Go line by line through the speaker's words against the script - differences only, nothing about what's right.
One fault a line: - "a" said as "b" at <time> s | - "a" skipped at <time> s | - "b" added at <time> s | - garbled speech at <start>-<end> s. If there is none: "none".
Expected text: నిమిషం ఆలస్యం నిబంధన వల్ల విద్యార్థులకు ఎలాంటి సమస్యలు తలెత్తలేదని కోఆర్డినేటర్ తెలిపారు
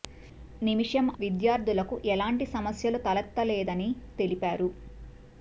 - "ఆలస్యం నిబంధన వల్ల" skipped at 1.1 s
- "కోఆర్డినేటర్" skipped at 3.9 s